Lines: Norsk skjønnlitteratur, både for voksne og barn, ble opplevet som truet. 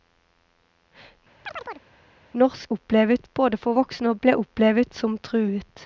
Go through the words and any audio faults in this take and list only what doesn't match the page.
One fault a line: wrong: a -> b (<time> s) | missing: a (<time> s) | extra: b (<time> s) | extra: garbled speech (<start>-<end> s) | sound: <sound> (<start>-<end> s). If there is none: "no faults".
sound: chirp (1.4-1.9 s)
wrong: skjønnlitteratur -> opplevet (2.7 s)
missing: barn (4.2 s)